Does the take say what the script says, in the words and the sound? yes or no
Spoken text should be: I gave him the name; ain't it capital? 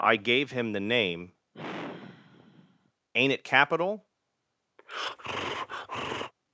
no